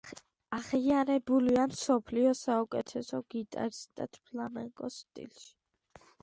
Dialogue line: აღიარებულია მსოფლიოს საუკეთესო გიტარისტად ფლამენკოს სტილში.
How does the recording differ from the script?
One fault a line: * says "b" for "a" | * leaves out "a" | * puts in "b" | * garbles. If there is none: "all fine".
all fine